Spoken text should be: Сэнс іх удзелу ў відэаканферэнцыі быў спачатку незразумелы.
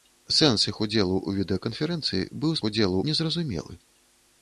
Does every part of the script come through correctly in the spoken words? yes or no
no